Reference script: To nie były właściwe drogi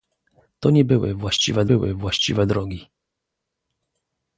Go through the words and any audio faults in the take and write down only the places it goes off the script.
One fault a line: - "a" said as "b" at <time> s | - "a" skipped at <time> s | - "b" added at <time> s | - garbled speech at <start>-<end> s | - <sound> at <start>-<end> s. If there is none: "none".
- "były właściwe" added at 1.6 s